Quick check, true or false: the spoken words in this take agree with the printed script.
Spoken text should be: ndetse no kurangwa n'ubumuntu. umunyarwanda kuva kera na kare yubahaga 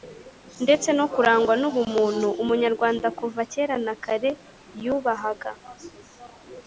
true